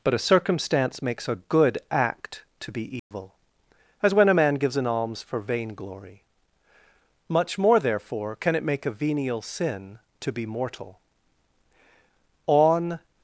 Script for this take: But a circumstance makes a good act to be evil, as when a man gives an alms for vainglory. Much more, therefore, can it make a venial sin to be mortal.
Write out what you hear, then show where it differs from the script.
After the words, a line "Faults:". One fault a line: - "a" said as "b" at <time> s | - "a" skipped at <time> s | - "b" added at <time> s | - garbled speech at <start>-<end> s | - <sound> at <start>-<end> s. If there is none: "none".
But a circumstance makes a good act to be evil, as when a man gives an alms for vainglory. Much more, therefore, can it make a venial sin to be mortal. On
Faults:
- dropout at 3.0-3.1 s
- "On" added at 12.5 s